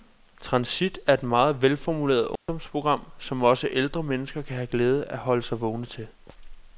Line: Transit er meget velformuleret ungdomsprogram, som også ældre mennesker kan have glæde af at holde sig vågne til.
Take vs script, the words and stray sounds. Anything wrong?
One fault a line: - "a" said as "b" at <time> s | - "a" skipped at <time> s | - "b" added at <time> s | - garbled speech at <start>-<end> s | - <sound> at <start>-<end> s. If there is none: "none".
- "et" added at 1.1 s
- dropout at 2.4-2.5 s